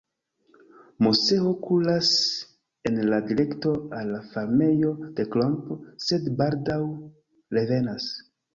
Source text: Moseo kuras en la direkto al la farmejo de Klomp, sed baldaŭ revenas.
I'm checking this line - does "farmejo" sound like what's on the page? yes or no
yes